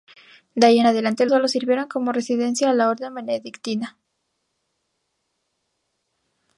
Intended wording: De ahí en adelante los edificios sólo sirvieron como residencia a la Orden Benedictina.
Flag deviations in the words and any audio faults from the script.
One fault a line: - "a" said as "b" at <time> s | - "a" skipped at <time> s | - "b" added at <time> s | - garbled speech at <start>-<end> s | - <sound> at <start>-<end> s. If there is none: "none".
- "los edificios" skipped at 1.3 s